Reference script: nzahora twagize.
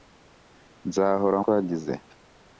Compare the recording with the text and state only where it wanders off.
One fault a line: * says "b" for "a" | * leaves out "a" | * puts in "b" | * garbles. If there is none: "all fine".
all fine